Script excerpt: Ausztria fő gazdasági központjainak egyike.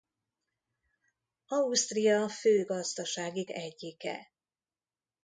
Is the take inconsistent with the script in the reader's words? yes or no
yes